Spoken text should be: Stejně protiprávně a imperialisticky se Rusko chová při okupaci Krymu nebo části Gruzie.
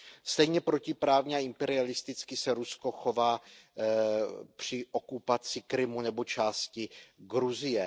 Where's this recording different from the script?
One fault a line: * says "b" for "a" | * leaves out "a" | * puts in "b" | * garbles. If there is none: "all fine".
all fine